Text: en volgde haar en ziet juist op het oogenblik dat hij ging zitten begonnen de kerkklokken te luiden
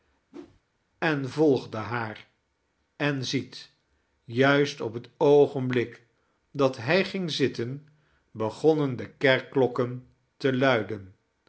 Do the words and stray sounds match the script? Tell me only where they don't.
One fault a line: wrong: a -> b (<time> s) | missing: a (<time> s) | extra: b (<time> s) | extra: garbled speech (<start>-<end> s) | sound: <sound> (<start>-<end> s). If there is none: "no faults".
sound: whoosh (0.3-0.6 s)